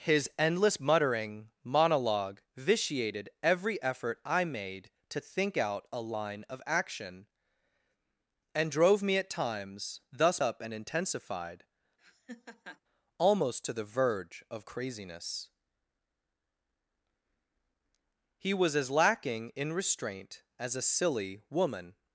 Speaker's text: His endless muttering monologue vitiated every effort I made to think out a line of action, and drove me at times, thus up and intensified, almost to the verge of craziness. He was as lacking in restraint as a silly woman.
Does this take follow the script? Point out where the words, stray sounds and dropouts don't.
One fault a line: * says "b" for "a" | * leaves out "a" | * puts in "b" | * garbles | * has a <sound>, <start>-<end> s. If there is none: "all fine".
* has a laugh, 12.0-12.8 s